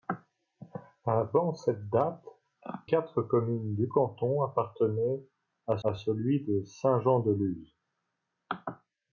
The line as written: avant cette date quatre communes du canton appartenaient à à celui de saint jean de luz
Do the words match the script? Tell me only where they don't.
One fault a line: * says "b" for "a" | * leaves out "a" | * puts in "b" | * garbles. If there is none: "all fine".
all fine